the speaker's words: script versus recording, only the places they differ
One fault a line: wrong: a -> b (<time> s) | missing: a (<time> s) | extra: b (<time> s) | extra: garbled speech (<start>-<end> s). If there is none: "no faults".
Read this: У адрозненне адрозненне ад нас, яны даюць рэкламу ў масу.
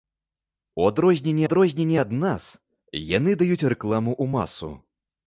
no faults